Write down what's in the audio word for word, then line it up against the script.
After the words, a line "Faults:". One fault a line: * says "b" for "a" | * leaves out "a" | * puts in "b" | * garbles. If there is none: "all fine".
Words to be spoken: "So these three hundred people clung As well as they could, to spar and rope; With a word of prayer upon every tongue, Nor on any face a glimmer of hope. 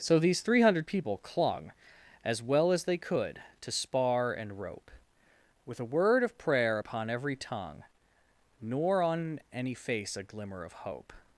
"So these three hundred people clung As well as they could, to spar and rope; With a word of prayer upon every tongue, Nor on any face a glimmer of hope.
Faults:
all fine